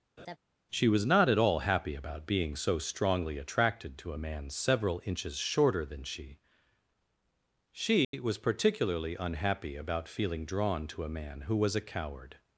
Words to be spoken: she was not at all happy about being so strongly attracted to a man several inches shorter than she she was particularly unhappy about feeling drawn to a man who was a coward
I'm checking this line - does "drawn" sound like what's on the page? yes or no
yes